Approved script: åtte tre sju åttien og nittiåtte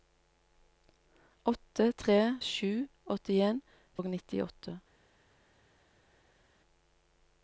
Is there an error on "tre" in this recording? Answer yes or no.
no